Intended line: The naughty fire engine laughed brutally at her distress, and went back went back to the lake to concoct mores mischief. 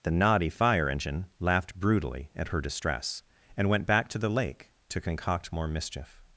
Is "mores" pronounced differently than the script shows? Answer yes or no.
yes